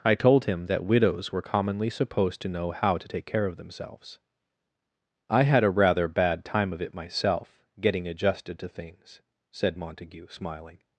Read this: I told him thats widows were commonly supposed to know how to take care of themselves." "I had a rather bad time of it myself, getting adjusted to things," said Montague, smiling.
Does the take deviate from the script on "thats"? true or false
true